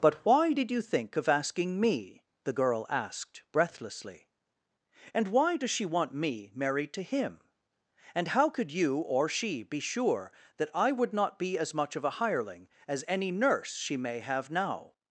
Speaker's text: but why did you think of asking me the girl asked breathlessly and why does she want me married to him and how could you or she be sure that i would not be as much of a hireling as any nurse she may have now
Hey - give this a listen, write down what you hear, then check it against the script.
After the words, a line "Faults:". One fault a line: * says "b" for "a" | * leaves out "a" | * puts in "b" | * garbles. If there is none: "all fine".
but why did you think of asking me the girl asked breathlessly and why does she want me married to him and how could you or she be sure that i would not be as much of a hireling as any nurse she may have now
Faults:
all fine